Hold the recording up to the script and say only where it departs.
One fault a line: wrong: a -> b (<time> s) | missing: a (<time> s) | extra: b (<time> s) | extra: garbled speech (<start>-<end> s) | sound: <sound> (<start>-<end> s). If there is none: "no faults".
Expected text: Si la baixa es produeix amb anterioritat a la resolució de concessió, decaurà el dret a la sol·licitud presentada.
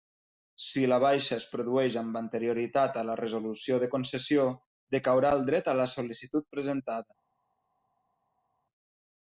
no faults